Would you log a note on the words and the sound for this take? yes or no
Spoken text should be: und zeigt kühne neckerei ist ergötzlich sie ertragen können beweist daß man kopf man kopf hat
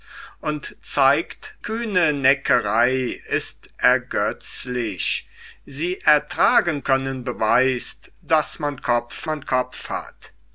no